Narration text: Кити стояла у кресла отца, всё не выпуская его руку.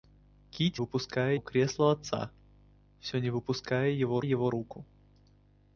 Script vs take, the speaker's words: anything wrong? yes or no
yes